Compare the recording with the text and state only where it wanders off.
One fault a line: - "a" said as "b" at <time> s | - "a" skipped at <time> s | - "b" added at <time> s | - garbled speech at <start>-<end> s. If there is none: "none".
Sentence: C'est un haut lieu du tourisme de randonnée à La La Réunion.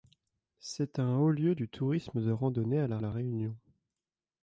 none